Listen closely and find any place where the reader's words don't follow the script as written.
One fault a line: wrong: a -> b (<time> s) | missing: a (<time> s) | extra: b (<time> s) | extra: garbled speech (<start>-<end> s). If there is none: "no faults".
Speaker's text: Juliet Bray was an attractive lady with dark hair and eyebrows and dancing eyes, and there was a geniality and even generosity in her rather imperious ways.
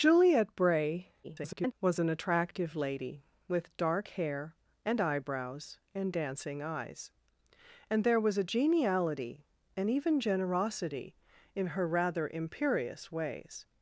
extra: garbled speech (1.2-1.7 s)